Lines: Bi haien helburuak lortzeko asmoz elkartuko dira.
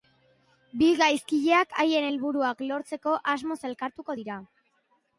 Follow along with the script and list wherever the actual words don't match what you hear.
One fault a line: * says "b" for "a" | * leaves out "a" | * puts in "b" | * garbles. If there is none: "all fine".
* puts in "gaizkileak"